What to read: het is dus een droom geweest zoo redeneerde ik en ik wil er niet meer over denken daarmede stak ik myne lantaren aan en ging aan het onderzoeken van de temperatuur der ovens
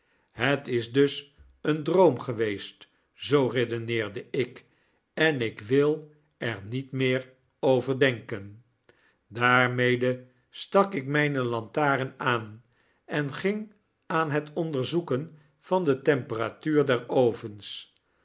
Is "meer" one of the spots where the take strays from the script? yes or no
no